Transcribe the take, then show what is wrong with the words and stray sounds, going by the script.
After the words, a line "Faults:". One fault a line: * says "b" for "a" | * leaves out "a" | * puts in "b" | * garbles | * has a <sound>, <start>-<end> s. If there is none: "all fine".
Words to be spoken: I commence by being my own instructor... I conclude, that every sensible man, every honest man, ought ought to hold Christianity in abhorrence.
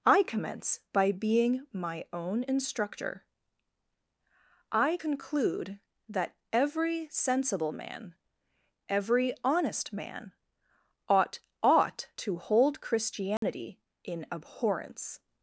I commence by being my own instructor... I conclude, that every sensible man, every honest man, ought ought to hold Christianity in abhorrence.
Faults:
* has a dropout, 13.4-13.4 s